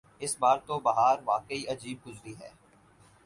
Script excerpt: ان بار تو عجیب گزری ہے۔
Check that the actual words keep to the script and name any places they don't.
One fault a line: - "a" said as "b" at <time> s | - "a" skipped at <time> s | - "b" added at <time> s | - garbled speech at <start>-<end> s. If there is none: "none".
- "ان" said as "اس" at 0.2 s
- "بہار واقعی" added at 0.8 s